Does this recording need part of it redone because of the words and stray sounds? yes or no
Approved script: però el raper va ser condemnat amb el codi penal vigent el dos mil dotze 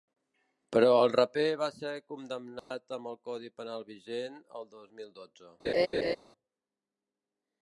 yes